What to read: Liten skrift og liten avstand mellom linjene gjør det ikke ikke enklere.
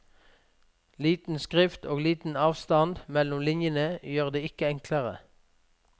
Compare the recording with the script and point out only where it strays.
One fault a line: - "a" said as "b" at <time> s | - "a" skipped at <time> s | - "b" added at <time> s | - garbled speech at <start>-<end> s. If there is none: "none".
- "ikke" skipped at 4.7 s